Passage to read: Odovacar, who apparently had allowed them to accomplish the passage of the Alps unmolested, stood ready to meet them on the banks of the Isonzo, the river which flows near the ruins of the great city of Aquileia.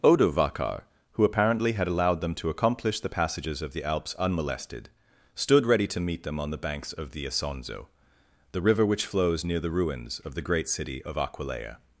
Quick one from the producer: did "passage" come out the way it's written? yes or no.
no